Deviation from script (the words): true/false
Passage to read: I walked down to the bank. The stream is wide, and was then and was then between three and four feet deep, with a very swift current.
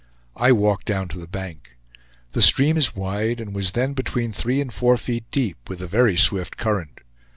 true